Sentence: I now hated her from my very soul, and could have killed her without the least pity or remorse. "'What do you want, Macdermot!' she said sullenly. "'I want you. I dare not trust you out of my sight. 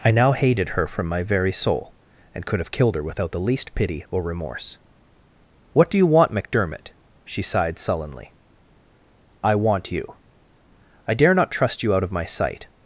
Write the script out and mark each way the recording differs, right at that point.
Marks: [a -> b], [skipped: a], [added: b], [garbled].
I now hated her from my very soul, and could have killed her without the least pity or remorse. "'What do you want, Macdermot!' she [said -> sighed] sullenly. "'I want you. I dare not trust you out of my sight.